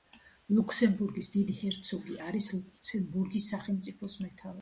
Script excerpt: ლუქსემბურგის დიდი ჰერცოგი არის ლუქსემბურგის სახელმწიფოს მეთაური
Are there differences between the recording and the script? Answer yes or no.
no